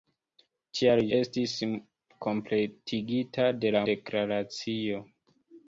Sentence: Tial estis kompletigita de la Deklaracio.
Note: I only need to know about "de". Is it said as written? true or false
true